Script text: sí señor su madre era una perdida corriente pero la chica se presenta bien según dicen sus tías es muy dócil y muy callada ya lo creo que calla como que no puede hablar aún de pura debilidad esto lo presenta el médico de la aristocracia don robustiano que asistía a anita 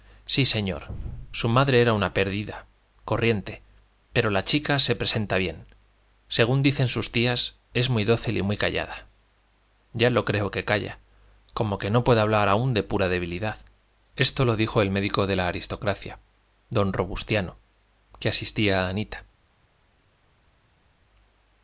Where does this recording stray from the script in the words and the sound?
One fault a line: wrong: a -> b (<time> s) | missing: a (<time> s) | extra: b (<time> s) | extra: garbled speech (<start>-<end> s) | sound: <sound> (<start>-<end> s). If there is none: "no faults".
wrong: presenta -> dijo (14.5 s)